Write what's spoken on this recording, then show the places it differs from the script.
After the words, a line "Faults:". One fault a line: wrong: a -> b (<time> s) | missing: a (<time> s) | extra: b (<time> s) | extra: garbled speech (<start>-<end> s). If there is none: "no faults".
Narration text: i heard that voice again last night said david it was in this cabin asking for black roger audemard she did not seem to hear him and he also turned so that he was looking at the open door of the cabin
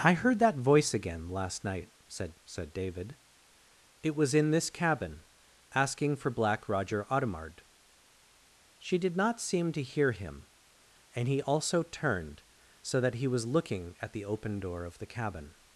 i heard that voice again last night said said david it was in this cabin asking for black roger audemard she did not seem to hear him and he also turned so that he was looking at the open door of the cabin
Faults:
extra: said (2.4 s)